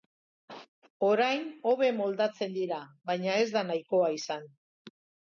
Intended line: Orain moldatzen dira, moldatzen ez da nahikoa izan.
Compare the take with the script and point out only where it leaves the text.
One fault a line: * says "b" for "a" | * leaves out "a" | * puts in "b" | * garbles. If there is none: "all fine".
* puts in "hobe"
* says "baina" for "moldatzen"